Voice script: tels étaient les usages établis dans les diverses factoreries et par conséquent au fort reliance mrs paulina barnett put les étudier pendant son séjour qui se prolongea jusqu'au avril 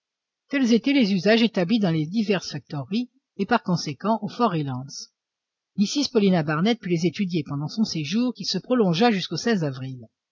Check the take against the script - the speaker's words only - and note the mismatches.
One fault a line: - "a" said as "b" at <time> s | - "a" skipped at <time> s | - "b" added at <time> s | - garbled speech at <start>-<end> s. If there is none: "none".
none